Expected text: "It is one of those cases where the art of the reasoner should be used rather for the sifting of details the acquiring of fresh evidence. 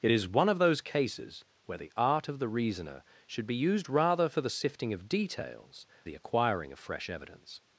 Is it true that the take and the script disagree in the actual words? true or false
false